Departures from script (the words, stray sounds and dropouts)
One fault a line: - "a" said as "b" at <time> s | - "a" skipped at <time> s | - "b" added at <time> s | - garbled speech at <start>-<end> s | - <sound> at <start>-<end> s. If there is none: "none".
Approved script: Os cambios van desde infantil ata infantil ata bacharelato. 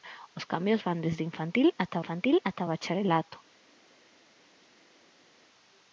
none